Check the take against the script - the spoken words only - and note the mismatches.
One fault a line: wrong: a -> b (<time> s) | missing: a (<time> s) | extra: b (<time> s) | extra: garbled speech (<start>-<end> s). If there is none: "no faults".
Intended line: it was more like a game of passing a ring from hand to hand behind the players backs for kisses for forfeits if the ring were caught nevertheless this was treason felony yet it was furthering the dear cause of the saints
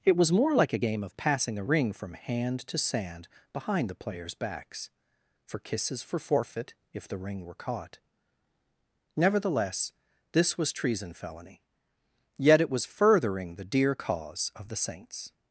wrong: hand -> sand (2.8 s)
wrong: forfeits -> forfeit (6.2 s)